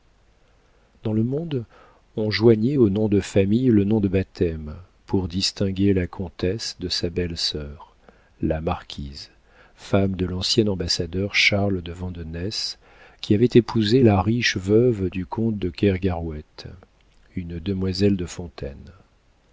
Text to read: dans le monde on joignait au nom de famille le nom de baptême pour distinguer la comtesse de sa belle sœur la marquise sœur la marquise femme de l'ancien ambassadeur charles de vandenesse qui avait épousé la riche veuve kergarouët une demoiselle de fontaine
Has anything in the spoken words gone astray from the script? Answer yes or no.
yes